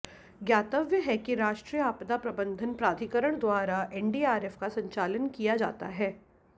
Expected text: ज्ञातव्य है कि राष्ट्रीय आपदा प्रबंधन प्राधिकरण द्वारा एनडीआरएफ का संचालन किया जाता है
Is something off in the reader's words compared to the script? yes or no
no